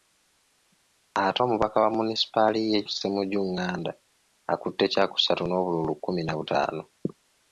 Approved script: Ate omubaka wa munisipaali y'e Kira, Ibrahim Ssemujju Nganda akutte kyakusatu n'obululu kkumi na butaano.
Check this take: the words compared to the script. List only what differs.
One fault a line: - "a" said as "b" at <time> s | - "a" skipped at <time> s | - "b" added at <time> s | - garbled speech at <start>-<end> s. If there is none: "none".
- "Kira Ibrahim" skipped at 2.8 s